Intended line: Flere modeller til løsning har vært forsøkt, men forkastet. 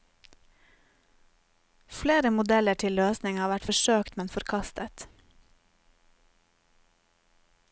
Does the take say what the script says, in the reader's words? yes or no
yes